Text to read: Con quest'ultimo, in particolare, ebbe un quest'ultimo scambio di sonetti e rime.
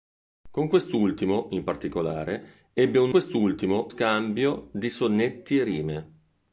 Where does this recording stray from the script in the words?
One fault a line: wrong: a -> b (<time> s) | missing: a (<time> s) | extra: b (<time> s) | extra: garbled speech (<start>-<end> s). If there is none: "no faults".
no faults